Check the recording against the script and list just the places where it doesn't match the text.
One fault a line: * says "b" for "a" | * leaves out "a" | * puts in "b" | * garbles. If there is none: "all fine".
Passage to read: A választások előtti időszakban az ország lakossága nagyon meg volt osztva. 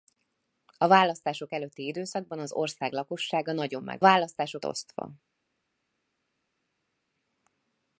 * says "választások" for "volt"